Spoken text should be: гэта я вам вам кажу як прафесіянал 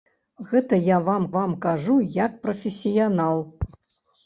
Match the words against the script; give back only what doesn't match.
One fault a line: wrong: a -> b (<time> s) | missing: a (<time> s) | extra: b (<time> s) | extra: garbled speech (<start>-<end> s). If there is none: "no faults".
no faults